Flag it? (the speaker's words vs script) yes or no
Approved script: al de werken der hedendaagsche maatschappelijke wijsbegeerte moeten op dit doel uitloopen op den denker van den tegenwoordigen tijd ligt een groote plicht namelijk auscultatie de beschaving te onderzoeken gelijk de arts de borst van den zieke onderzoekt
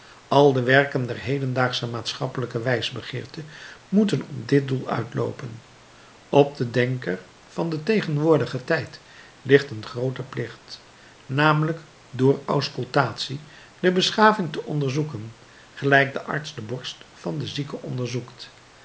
yes